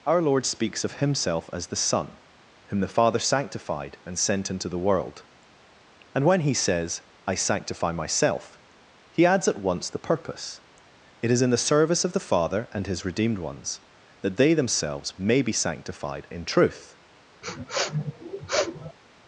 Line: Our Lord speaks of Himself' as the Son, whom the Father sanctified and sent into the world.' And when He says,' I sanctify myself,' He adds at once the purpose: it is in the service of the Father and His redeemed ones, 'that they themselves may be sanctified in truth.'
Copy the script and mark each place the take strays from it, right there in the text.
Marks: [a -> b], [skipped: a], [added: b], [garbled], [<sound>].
Our Lord speaks of Himself' as the Son, whom the Father sanctified and sent into the world.' And when He says,' I sanctify myself,' He adds at once the purpose: it is in the service of the Father and His redeemed ones, 'that they themselves may be sanctified in truth.' [sniff]